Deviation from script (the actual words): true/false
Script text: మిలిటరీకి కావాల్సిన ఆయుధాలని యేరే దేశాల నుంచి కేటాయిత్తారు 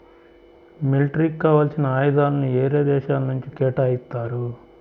false